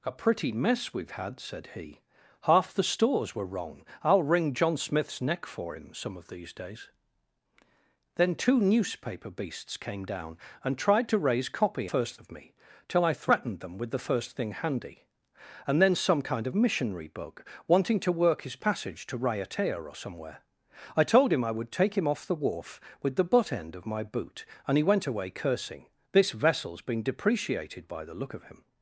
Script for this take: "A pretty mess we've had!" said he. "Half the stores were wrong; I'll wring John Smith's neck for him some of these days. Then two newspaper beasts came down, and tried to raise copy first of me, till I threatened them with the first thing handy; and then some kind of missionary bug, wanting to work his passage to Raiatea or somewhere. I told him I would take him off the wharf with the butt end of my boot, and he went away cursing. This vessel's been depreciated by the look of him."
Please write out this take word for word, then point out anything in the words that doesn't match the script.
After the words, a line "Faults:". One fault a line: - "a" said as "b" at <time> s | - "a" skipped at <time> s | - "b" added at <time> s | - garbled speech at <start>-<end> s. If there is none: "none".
"A pretty mess we've had!" said he. "Half the stores were wrong; I'll wring John Smith's neck for him some of these days. Then two newspaper beasts came down, and tried to raise copy first of me, till I threatened them with the first thing handy; and then some kind of missionary bug, wanting to work his passage to Raiatea or somewhere. I told him I would take him off the wharf with the butt end of my boot, and he went away cursing. This vessel's been depreciated by the look of him."
Faults:
none